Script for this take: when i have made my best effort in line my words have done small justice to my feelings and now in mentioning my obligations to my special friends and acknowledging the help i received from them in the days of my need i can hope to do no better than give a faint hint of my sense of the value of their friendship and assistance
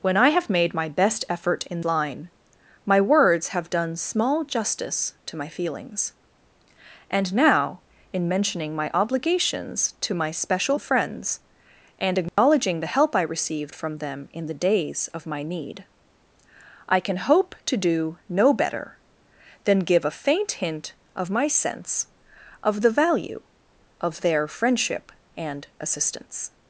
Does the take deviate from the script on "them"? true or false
false